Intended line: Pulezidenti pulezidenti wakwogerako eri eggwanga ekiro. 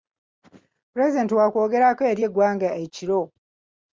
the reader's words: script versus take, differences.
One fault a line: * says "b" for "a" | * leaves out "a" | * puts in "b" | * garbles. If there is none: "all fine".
* leaves out "pulezidenti"